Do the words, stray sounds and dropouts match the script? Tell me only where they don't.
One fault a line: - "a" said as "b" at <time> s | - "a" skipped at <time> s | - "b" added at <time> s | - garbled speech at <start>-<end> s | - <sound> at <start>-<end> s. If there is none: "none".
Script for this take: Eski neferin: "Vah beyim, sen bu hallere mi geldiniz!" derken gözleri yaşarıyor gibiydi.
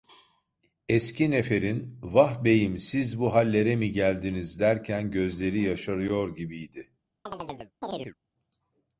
- "sen" said as "siz" at 2.8 s
- chirp at 7.3-8.2 s